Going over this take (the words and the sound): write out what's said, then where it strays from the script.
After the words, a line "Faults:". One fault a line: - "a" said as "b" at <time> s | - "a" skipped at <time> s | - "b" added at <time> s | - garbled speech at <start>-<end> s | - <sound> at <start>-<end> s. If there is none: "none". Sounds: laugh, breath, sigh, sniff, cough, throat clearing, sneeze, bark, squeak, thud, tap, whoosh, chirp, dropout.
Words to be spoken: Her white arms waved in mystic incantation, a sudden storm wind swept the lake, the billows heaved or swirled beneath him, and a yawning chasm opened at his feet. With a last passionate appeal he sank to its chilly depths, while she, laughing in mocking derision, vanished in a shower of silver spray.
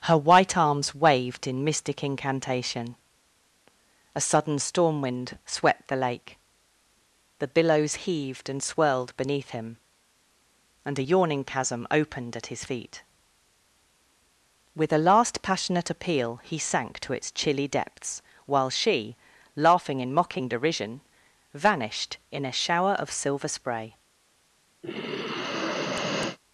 Her white arms waved in mystic incantation, a sudden storm wind swept the lake, the billows heaved and swirled beneath him, and a yawning chasm opened at his feet. With a last passionate appeal he sank to its chilly depths, while she, laughing in mocking derision, vanished in a shower of silver spray.
Faults:
- "or" said as "and" at 8.5 s
- sigh at 24.8-26.4 s